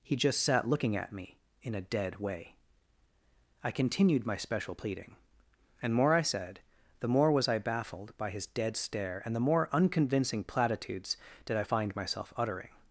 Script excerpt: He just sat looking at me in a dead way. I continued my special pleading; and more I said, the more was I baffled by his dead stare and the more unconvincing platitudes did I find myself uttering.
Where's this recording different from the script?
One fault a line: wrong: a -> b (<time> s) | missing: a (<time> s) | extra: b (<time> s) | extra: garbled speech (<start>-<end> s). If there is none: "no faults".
no faults